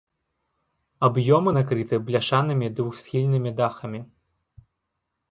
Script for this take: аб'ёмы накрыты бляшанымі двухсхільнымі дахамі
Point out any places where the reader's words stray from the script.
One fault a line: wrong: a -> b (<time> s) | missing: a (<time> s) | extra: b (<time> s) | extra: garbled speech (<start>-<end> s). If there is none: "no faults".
no faults